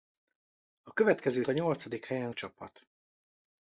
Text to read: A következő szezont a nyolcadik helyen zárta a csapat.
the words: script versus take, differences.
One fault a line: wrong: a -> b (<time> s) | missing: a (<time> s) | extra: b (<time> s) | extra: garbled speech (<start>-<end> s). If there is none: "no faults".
missing: szezont (1.4 s)
missing: zárta (2.3 s)